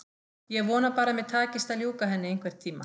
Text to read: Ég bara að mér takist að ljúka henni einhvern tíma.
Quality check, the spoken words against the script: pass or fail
fail